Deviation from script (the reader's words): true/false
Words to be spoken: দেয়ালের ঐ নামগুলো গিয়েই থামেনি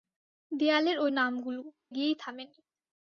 false